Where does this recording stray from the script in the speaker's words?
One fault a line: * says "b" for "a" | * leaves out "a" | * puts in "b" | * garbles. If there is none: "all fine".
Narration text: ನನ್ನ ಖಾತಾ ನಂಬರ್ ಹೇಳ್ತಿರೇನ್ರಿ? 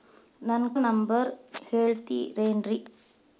* leaves out "ಖಾತಾ"